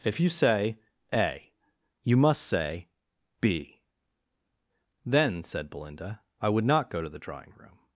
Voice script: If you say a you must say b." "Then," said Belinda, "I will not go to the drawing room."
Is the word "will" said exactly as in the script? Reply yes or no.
no